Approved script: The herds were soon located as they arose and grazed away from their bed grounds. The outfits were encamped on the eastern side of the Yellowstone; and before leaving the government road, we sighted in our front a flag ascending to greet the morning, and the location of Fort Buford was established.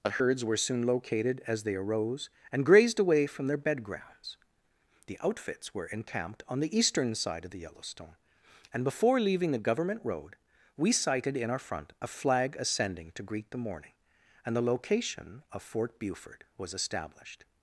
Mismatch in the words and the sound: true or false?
false